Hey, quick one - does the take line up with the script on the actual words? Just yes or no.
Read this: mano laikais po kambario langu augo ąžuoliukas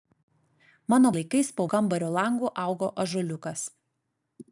yes